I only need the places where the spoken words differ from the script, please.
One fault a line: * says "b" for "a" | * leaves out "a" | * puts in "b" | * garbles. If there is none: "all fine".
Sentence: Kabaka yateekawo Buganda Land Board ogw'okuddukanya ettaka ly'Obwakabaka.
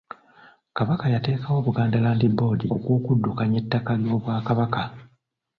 all fine